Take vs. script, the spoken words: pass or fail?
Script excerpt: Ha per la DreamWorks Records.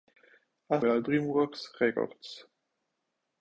pass